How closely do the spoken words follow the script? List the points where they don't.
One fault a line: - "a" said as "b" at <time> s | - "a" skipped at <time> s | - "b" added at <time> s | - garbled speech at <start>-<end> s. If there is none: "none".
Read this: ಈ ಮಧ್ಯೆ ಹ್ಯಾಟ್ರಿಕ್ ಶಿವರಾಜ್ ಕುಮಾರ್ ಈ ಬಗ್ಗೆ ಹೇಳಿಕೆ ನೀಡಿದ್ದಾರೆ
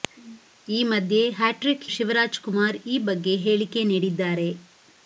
none